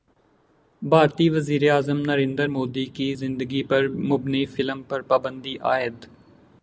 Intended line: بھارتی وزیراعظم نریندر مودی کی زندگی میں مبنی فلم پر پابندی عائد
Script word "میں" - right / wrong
wrong